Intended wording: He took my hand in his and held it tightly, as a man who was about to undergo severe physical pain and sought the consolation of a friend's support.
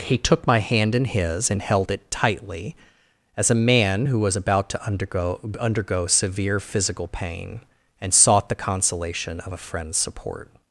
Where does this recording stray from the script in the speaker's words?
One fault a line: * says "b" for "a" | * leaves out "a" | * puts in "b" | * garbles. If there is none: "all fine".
* puts in "undergo"